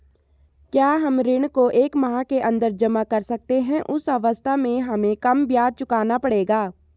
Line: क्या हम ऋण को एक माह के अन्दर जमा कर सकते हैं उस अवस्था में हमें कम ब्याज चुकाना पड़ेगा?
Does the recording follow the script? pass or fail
pass